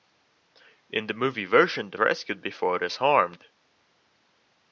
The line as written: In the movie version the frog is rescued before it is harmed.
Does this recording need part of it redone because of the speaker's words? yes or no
yes